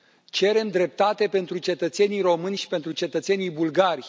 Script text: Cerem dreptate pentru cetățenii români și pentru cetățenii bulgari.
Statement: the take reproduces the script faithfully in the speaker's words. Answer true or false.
true